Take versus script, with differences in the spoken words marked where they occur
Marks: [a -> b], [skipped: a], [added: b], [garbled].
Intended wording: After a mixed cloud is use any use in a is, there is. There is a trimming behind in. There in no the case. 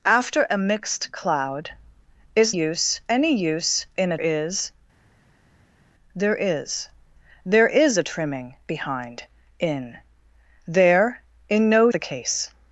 After a mixed cloud is use any use in a is, there is. There is a trimming behind in. There in no the case.